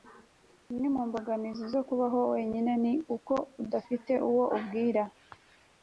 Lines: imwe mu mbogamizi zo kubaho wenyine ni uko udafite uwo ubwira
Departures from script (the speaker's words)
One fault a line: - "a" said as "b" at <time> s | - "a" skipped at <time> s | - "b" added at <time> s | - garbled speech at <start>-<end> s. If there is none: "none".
none